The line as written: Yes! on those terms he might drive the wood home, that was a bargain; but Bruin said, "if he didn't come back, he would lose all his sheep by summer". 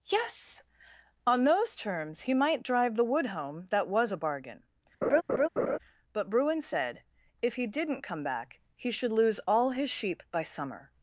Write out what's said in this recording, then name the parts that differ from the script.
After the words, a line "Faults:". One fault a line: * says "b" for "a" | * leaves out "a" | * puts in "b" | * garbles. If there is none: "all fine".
Yes! on those terms he might drive the wood home, that was a bargain; but Bruin said, "if he didn't come back, he should lose all his sheep by summer".
Faults:
* says "should" for "would"